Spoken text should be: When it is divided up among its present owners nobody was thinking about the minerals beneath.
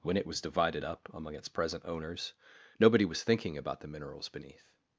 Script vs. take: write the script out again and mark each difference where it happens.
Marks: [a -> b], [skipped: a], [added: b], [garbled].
When it [is -> was] divided up among its present owners nobody was thinking about the minerals beneath.